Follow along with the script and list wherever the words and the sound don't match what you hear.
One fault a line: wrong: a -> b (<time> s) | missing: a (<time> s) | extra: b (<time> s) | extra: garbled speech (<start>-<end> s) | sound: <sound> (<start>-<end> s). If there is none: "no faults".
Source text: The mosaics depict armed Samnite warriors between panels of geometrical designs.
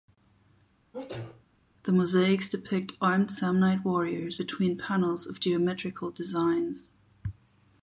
sound: sneeze (0.9-1.5 s)